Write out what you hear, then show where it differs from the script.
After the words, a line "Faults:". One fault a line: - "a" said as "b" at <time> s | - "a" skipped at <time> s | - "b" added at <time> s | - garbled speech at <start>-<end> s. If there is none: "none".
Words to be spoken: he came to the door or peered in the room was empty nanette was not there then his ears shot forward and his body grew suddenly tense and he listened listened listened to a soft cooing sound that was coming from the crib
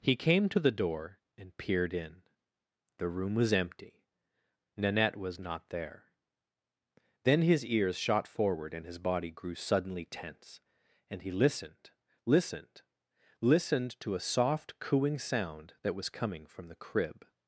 he came to the door and peered in the room was empty nanette was not there then his ears shot forward and his body grew suddenly tense and he listened listened listened to a soft cooing sound that was coming from the crib
Faults:
- "or" said as "and" at 1.4 s